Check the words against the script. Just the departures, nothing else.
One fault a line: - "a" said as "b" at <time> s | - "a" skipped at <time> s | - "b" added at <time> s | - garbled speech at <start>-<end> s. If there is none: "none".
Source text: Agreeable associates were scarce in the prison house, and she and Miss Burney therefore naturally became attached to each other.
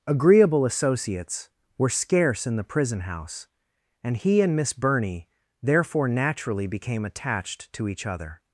- "she" said as "he" at 4.2 s